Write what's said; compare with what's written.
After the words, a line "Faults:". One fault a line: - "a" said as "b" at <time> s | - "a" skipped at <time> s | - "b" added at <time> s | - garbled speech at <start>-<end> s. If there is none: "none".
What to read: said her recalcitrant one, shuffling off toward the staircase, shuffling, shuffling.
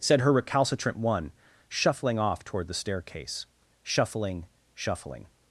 said her recalcitrant one, shuffling off toward the staircase, shuffling, shuffling.
Faults:
none